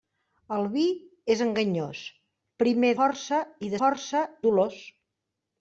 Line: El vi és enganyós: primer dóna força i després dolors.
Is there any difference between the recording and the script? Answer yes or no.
yes